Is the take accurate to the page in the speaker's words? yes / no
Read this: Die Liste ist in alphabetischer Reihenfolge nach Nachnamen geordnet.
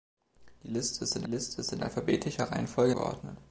no